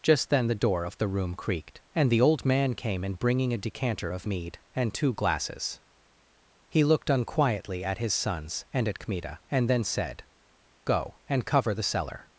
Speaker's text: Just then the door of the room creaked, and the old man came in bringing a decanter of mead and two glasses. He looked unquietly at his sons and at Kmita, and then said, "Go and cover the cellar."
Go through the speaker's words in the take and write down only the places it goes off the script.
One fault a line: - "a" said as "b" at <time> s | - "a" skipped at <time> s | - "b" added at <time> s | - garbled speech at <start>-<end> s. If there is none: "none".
none